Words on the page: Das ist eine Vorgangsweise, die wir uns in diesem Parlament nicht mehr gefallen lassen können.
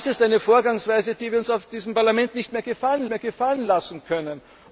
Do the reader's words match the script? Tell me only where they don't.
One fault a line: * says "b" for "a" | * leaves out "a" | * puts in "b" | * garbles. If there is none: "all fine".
* puts in "mehr gefallen"